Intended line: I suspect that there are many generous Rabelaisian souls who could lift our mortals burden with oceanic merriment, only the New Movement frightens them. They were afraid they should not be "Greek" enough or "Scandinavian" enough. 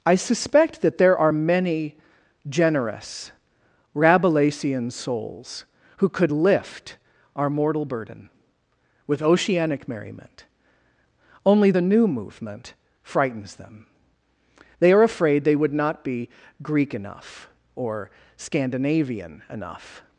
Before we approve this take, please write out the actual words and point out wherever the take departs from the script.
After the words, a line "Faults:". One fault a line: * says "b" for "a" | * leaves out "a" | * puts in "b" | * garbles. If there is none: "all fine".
I suspect that there are many generous Rabelaisian souls who could lift our mortal burden with oceanic merriment, only the New Movement frightens them. They are afraid they would not be "Greek" enough or "Scandinavian" enough.
Faults:
* says "mortal" for "mortals"
* says "are" for "were"
* says "would" for "should"